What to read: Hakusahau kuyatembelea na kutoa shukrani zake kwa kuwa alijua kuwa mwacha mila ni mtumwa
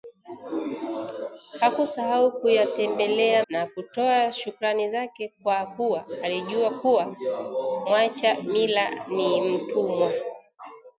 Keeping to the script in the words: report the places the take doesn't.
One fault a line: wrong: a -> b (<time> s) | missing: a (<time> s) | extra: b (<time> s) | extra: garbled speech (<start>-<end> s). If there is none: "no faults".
no faults